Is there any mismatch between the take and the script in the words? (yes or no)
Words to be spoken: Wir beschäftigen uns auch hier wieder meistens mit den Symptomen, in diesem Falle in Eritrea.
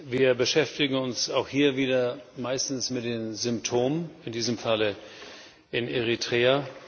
no